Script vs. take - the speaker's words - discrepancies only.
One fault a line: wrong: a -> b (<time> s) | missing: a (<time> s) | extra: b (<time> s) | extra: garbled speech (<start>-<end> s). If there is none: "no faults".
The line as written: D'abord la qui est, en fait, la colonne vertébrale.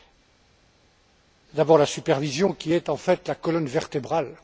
extra: supervision (1.9 s)